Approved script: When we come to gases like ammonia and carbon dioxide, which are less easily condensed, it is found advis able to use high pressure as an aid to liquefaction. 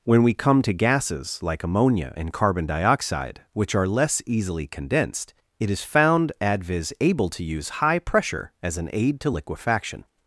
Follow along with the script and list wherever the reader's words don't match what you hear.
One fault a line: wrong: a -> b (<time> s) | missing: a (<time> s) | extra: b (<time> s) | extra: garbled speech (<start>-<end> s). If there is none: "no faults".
no faults